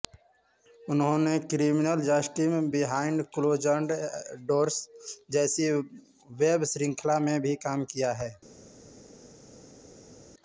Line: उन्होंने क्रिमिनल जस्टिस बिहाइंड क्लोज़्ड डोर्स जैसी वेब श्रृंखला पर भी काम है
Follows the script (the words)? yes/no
no